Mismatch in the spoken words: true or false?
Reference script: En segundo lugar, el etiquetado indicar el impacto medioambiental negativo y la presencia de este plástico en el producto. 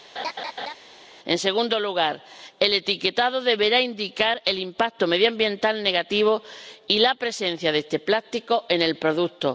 true